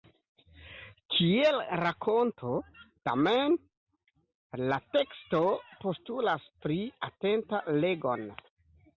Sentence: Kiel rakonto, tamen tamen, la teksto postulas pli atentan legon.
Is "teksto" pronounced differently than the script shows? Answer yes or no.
no